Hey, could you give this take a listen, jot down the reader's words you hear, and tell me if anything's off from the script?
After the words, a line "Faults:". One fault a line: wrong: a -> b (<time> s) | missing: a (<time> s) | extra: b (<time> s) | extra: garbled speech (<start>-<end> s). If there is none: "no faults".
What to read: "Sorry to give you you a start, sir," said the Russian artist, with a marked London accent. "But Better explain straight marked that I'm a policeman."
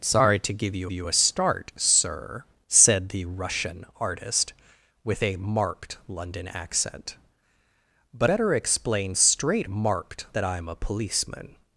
"Sorry to give you you a start, sir," said the Russian artist, with a marked London accent. "But Better explain straight marked that I'm a policeman."
Faults:
no faults